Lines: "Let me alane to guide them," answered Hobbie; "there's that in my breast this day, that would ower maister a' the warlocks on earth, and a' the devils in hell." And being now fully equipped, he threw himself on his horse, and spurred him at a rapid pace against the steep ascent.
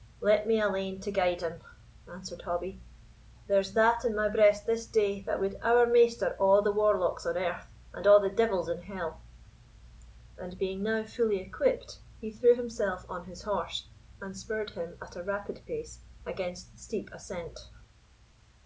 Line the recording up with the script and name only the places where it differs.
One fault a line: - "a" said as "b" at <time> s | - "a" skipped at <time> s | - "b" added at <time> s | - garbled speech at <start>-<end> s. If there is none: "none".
- "them" said as "him" at 1.4 s